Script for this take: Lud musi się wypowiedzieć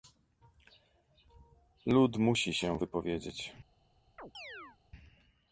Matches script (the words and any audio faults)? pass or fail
fail